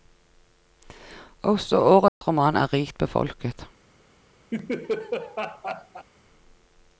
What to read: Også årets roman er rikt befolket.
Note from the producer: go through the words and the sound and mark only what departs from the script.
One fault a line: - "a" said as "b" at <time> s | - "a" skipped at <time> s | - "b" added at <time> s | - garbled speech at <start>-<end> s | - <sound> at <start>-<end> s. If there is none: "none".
- dropout at 2.1-2.2 s
- laugh at 4.5-6.1 s